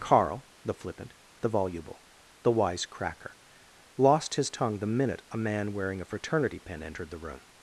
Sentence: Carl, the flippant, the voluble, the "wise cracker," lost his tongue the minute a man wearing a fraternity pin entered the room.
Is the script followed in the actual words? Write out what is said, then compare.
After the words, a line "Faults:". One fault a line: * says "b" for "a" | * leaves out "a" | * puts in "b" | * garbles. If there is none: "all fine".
Carl, the flippant, the voluble, the "wise cracker," lost his tongue the minute a man wearing a fraternity pin entered the room.
Faults:
all fine